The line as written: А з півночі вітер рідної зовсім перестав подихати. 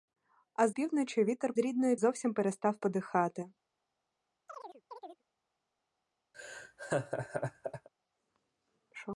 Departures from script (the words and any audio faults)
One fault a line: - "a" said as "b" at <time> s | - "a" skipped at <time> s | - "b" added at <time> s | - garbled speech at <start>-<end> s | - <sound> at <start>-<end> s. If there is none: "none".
- chirp at 4.5-5.2 s
- laugh at 6.3-7.9 s